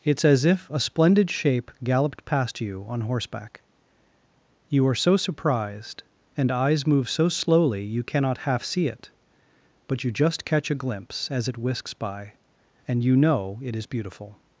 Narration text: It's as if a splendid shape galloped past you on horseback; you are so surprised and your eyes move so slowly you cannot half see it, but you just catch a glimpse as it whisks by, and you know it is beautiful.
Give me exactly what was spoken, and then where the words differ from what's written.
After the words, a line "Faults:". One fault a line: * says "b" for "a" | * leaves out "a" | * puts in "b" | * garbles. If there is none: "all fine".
It's as if a splendid shape galloped past you on horseback; you are so surprised and eyes move so slowly you cannot half see it, but you just catch a glimpse as it whisks by, and you know it is beautiful.
Faults:
* leaves out "your"